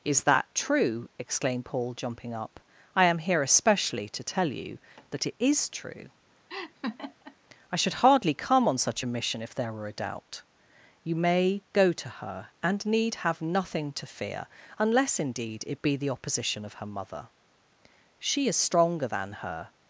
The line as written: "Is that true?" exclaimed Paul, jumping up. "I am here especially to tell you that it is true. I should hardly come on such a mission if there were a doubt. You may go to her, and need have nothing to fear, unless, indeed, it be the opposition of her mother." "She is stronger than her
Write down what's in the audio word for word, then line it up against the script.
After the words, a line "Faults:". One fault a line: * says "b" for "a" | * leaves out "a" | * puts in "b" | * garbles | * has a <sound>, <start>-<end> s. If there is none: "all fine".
"Is that true?" exclaimed Paul, jumping up. "I am here especially to tell you that it is true. I should hardly come on such a mission if there were a doubt. You may go to her, and need have nothing to fear, unless, indeed, it be the opposition of her mother." "She is stronger than her
Faults:
* has a laugh, 6.5-7.4 s